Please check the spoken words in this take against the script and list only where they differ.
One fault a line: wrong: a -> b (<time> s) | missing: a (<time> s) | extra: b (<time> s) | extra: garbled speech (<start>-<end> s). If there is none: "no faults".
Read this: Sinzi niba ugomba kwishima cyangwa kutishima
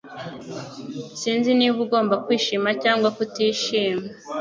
no faults